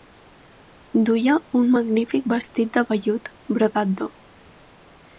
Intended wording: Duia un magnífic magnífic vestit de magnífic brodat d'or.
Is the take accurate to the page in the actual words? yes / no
no